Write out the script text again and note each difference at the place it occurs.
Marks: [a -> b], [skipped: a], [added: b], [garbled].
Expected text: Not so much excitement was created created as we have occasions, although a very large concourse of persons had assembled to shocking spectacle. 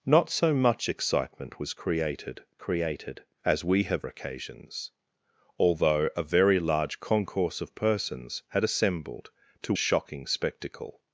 Not so much excitement was created created as we have occasions, although a very large concourse of persons had assembled to shocking spectacle.